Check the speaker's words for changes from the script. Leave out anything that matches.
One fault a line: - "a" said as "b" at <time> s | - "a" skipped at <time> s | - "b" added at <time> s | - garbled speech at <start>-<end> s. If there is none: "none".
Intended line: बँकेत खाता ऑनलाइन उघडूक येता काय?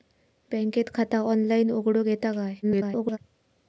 - garbled speech at 2.6-3.2 s